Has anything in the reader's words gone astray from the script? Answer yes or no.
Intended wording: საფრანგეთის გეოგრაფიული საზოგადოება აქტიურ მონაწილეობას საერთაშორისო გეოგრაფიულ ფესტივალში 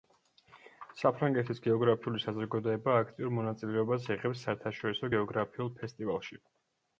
yes